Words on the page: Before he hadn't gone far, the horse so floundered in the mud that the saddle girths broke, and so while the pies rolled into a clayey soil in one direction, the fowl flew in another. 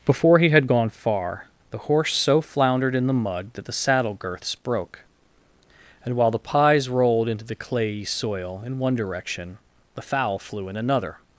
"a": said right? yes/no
no